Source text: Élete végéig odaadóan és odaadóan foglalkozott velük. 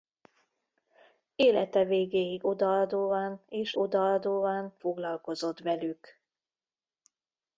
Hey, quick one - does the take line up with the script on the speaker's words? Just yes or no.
yes